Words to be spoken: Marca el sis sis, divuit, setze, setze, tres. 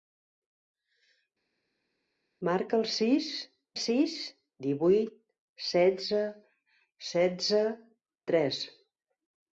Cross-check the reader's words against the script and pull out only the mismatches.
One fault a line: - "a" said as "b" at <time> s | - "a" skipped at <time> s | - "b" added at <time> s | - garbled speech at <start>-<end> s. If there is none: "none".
none